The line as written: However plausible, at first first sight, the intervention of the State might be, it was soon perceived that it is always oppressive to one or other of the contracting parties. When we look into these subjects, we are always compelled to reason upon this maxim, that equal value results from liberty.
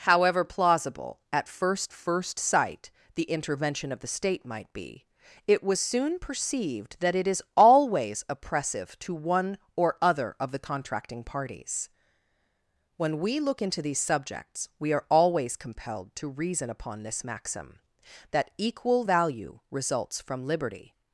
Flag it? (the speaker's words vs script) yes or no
no